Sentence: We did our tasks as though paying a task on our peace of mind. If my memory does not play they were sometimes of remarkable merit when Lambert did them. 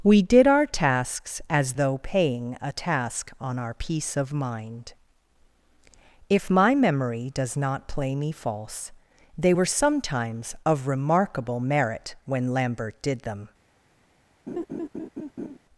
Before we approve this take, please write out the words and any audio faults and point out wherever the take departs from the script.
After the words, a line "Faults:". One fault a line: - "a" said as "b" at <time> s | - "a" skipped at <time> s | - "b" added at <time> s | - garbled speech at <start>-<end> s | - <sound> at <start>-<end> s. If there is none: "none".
We did our tasks as though paying a task on our peace of mind. If my memory does not play me false, they were sometimes of remarkable merit when Lambert did them.
Faults:
- "me false" added at 8.2 s
- laugh at 14.5-15.6 s